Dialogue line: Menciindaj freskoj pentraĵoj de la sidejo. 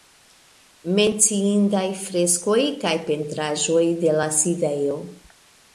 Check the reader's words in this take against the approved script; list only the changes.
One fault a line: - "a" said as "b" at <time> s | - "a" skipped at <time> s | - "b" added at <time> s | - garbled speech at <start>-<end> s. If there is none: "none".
- "kaj" added at 2.9 s